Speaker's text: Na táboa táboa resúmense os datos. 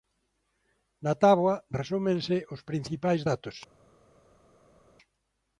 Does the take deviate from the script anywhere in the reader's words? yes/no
yes